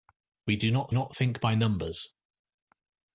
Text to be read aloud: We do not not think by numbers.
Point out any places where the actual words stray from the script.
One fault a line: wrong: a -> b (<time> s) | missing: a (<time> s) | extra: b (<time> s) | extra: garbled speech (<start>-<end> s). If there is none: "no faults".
no faults